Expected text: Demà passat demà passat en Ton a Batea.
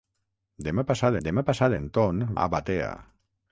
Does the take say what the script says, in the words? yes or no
yes